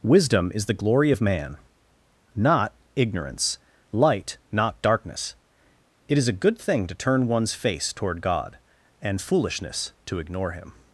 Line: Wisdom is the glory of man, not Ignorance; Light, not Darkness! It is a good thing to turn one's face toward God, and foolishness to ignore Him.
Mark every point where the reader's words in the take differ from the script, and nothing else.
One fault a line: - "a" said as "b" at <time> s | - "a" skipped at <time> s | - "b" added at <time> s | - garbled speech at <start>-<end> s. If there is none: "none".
none